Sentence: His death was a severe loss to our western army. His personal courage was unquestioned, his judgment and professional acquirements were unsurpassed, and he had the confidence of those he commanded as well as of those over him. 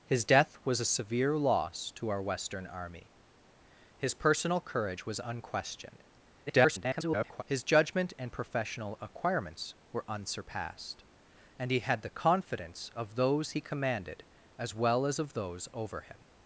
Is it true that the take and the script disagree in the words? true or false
true